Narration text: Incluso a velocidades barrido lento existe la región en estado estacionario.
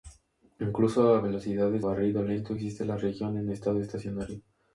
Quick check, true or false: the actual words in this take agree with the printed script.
true